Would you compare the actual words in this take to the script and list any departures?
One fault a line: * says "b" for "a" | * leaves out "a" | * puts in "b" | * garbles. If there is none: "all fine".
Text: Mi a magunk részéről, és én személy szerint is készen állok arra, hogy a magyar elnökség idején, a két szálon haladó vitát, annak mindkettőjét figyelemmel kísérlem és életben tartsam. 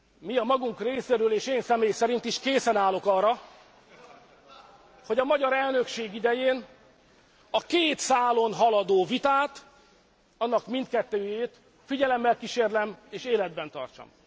all fine